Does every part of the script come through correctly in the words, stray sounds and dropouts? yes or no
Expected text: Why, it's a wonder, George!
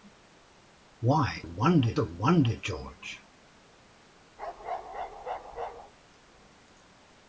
no